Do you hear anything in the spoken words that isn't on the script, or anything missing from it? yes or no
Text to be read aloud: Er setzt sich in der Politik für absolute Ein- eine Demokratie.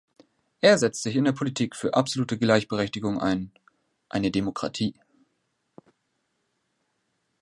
yes